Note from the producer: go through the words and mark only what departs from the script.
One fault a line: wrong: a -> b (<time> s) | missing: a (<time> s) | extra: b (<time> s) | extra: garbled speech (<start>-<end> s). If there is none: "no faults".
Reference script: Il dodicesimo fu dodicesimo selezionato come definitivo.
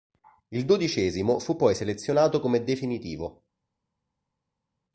wrong: dodicesimo -> poi (1.6 s)